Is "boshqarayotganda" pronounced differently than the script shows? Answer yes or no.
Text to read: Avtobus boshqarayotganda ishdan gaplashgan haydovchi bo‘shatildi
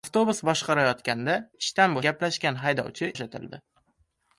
no